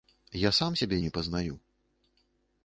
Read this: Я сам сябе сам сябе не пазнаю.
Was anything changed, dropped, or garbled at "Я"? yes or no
no